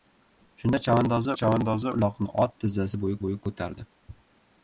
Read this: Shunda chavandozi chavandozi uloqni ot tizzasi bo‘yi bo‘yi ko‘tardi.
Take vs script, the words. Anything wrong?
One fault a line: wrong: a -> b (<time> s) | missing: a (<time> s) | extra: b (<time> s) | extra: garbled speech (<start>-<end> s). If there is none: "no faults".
no faults